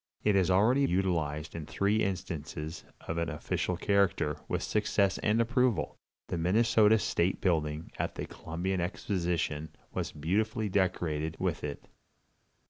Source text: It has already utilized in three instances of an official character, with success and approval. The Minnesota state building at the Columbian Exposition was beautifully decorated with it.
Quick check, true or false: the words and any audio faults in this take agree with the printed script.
true